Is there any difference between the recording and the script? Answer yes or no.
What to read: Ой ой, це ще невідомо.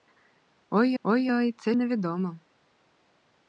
yes